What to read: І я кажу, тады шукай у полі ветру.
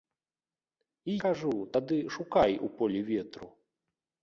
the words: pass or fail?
fail